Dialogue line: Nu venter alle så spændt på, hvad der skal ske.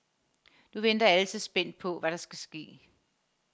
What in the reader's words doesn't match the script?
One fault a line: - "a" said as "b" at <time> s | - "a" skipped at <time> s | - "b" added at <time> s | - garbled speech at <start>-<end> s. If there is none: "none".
none